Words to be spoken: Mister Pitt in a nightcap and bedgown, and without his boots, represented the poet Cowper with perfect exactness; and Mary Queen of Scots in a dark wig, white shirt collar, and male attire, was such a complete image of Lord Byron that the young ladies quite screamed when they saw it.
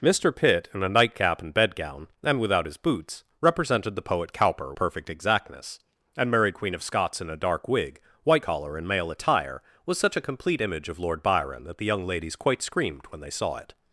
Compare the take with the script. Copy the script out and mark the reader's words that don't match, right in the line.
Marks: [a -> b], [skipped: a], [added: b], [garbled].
Mister Pitt in a nightcap and bedgown, and without his boots, represented the poet Cowper [skipped: with] perfect exactness; and Mary Queen of Scots in a dark wig, white [skipped: shirt] collar, and male attire, was such a complete image of Lord Byron that the young ladies quite screamed when they saw it.